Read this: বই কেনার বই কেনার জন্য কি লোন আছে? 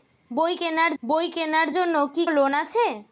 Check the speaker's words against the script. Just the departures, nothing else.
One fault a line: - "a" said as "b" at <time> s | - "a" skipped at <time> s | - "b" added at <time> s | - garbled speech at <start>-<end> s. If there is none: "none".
none